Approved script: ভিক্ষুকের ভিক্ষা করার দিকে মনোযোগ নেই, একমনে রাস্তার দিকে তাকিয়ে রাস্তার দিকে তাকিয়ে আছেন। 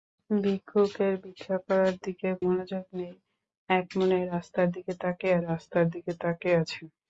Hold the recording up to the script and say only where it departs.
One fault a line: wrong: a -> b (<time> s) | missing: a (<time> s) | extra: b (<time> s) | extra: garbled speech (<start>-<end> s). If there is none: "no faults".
no faults